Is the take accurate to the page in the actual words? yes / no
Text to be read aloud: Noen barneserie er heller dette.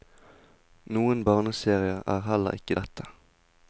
no